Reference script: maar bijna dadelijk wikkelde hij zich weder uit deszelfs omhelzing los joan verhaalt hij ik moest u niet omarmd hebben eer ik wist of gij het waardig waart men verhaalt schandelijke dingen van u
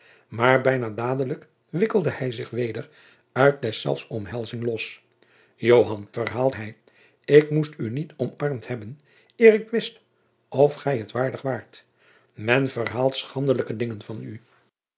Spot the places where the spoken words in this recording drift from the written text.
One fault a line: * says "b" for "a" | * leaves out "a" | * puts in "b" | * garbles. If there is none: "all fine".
all fine